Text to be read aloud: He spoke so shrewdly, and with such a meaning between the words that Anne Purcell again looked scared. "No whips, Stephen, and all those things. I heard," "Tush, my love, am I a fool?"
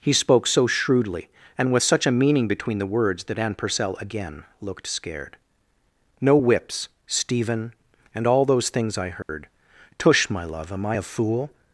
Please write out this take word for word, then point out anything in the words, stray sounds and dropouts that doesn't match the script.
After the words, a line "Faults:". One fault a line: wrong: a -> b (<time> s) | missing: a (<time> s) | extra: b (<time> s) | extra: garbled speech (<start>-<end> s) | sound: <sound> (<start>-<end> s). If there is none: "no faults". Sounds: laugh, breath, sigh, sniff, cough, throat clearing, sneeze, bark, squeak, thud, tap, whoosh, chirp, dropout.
He spoke so shrewdly, and with such a meaning between the words that Anne Purcell again looked scared. "No whips, Stephen, and all those things. I heard," "Tush, my love, am I a fool?"
Faults:
sound: dropout (9.2-9.3 s)